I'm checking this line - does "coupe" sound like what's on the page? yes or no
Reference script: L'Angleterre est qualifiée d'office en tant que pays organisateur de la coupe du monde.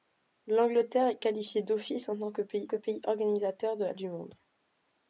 no